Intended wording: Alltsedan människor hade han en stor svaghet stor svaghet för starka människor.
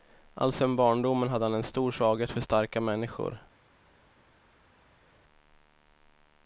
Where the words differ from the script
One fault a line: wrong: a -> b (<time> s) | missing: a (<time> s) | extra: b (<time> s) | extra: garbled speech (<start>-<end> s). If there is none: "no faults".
wrong: människor -> barndomen (0.8 s)
missing: stor svaghet (2.3 s)